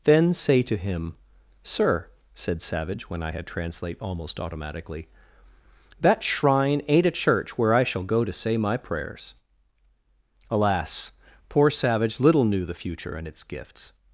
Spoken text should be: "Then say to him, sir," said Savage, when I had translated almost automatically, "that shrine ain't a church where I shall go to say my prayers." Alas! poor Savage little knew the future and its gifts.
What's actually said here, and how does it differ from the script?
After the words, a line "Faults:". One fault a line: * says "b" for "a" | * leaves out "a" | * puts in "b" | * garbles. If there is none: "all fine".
"Then say to him, sir," said Savage, when I had translate almost automatically, "that shrine ain't a church where I shall go to say my prayers." Alas! poor Savage little knew the future and its gifts.
Faults:
* says "translate" for "translated"